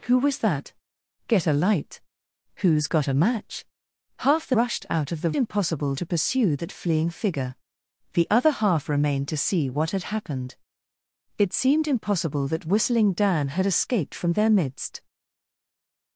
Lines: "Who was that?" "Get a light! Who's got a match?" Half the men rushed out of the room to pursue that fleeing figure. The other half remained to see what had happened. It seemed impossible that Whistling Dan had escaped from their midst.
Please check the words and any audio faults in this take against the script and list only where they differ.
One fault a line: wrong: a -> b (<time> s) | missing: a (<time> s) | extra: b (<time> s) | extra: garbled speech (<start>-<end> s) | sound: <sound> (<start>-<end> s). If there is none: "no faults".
missing: men (4.5 s)
wrong: room -> impossible (5.4 s)